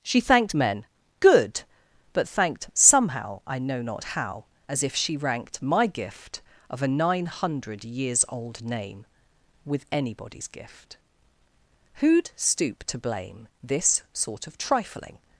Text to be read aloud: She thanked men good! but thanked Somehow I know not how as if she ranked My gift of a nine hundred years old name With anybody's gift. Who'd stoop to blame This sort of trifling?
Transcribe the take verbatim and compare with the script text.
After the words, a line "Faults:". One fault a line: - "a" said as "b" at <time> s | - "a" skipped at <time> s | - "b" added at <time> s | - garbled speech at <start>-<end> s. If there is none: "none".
She thanked men good! but thanked Somehow I know not how as if she ranked My gift of a nine hundred years old name With anybody's gift. Who'd stoop to blame This sort of trifling?
Faults:
none